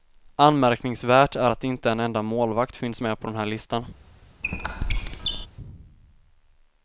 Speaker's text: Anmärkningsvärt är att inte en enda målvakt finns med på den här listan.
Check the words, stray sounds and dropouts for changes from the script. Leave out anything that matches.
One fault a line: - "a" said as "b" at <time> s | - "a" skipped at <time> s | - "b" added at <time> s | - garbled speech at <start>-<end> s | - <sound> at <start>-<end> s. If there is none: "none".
- squeak at 4.4-5.5 s